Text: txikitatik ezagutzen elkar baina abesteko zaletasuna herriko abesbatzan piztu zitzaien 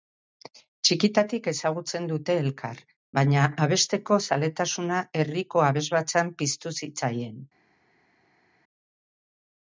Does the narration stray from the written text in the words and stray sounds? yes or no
yes